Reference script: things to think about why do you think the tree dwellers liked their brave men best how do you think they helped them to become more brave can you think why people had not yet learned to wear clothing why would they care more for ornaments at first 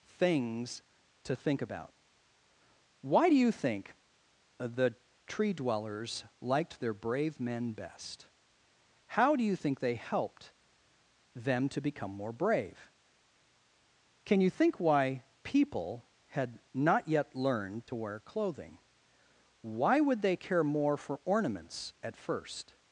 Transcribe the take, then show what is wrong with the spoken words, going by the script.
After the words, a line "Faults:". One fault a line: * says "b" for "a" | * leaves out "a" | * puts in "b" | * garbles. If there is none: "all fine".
things to think about why do you think the tree dwellers liked their brave men best how do you think they helped them to become more brave can you think why people had not yet learned to wear clothing why would they care more for ornaments at first
Faults:
all fine